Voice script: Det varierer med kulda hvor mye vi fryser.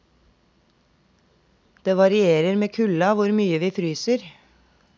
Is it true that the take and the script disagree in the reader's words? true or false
false